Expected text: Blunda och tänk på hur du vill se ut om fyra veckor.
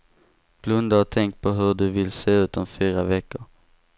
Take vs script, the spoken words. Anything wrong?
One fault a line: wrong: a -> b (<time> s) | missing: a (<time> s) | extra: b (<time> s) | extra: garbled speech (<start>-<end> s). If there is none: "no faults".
no faults